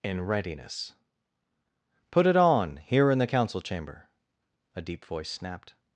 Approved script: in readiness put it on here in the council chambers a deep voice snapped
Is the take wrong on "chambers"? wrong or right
wrong